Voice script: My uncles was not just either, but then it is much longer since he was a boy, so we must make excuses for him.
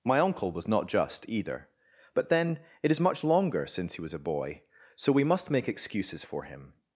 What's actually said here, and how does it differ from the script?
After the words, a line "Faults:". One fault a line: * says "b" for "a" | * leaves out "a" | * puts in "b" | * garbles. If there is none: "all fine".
My uncle was not just either, but then it is much longer since he was a boy, so we must make excuses for him.
Faults:
* says "uncle" for "uncles"